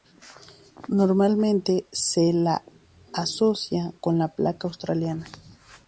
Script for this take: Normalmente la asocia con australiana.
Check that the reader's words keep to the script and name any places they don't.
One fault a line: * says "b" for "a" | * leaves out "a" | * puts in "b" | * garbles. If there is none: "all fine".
* puts in "se"
* puts in "la placa"